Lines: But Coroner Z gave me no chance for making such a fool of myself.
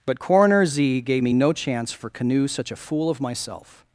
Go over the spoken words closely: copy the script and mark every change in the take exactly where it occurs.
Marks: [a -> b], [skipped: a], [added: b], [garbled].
But Coroner Z gave me no chance for [making -> canoe] such a fool of myself.